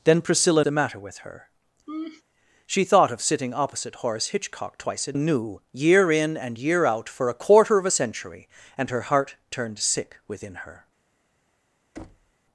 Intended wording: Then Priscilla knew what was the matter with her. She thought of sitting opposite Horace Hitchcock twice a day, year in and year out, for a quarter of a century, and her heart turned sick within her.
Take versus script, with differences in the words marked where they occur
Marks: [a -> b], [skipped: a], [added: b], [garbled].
Then Priscilla [skipped: knew what was] the matter with her. She thought of sitting opposite Horace Hitchcock twice a [day, -> knew] year in and year out, for a quarter of a century, and her heart turned sick within her.